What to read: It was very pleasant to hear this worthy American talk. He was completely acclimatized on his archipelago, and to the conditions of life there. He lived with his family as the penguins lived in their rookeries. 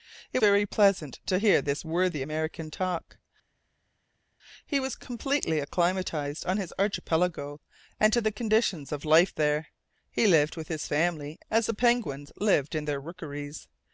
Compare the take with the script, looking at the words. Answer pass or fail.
fail